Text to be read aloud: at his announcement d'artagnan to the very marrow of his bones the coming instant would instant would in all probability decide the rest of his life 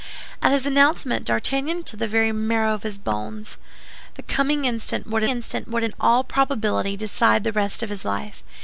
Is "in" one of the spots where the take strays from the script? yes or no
no